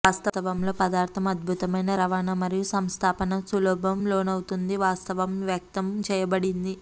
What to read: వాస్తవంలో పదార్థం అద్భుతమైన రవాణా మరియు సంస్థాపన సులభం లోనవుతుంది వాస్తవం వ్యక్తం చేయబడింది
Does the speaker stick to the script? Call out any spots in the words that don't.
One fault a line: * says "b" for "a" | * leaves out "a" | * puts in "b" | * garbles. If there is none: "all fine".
all fine